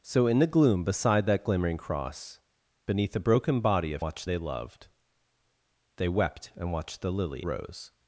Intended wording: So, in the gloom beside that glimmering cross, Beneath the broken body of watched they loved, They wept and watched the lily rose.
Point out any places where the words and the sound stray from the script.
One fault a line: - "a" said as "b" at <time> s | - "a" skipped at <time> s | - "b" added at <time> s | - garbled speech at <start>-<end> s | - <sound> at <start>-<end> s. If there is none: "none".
none